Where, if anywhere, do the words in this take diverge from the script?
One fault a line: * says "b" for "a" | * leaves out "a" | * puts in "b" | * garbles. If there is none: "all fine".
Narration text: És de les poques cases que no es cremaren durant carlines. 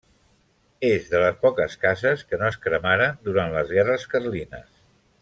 * puts in "les guerres"